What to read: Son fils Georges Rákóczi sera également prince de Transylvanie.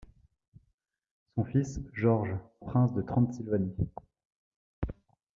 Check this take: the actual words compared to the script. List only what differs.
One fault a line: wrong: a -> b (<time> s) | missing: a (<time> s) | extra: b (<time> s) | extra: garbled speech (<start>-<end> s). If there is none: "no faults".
missing: Rákóczi sera également (2.4 s)